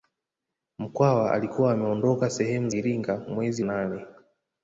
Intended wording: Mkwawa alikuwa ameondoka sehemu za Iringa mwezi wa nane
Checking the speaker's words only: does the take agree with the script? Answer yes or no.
no